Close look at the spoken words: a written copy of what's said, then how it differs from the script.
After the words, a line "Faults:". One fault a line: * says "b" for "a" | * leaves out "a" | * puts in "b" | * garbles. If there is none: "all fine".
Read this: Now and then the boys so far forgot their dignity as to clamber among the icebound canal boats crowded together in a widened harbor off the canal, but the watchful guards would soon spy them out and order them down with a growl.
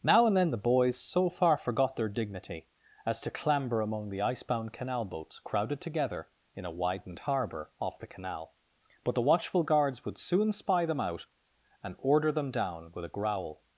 Now and then the boys so far forgot their dignity as to clamber among the icebound canal boats crowded together in a widened harbor off the canal, but the watchful guards would soon spy them out and order them down with a growl.
Faults:
all fine